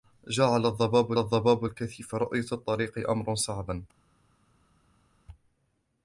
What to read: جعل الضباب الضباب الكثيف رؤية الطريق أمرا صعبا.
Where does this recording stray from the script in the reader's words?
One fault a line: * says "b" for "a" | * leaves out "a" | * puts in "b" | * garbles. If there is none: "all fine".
all fine